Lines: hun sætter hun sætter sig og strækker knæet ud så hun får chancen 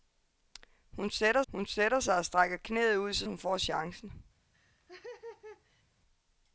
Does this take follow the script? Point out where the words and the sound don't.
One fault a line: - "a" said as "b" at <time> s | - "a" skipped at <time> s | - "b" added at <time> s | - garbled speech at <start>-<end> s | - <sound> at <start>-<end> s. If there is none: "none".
- laugh at 4.5-5.8 s